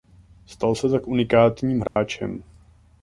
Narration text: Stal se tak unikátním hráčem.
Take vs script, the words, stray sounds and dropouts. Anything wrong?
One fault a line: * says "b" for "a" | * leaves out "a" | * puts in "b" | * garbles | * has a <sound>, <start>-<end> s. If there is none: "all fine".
* has a dropout, 1.9-2.0 s